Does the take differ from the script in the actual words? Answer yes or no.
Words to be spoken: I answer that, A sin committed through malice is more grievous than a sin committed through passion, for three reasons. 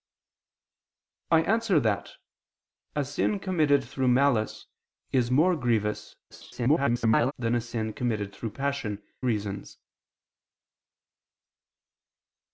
yes